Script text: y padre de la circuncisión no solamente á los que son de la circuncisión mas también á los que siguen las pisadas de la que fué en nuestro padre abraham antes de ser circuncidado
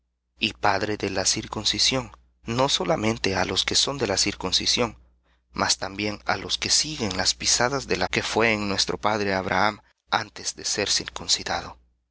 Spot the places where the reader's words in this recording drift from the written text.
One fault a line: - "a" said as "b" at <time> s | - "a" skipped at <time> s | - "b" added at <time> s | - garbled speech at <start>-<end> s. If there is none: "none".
none